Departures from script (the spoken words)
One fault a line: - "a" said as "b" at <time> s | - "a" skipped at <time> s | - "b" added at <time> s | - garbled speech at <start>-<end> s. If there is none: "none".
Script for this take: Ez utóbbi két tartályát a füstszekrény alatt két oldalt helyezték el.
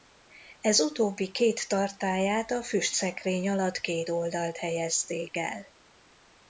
none